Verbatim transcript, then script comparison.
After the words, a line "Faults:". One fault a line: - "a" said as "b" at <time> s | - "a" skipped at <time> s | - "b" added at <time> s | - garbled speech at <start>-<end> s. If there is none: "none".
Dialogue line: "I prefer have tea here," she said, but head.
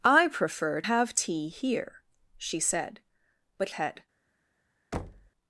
"I prefer have tea here," she said, but head.
Faults:
none